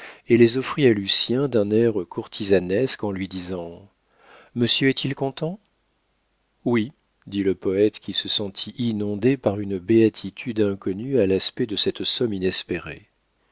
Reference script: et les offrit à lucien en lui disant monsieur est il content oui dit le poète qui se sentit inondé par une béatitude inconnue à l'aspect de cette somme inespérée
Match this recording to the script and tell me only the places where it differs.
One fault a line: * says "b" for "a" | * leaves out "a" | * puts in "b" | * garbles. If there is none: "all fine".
* puts in "d'un air courtisanesque"